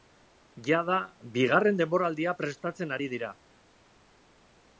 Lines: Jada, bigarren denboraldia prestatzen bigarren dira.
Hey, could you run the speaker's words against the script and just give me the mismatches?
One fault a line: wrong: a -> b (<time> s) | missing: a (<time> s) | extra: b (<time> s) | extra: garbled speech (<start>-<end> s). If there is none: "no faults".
wrong: bigarren -> ari (3.0 s)